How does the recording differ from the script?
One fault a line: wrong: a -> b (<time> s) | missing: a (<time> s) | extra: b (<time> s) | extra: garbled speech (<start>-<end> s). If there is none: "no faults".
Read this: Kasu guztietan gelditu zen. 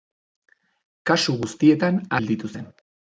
no faults